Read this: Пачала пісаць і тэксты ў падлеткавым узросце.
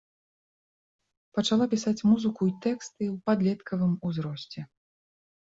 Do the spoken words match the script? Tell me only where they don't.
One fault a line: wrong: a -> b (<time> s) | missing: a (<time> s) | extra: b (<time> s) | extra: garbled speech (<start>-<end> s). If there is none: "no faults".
extra: музыку (2.1 s)